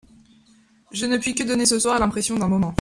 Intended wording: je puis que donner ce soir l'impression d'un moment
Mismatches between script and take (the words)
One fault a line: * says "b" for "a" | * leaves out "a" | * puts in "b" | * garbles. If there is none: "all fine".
* puts in "ne"